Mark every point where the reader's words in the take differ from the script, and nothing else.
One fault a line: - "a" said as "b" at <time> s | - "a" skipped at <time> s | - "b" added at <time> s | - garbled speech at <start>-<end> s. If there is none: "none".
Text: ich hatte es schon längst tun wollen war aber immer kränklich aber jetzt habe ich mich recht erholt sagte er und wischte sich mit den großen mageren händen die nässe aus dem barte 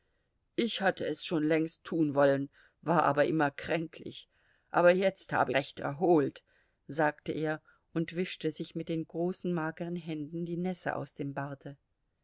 - "ich mich" skipped at 5.5 s